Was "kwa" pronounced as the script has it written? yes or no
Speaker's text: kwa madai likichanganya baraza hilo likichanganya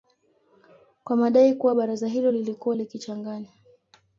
yes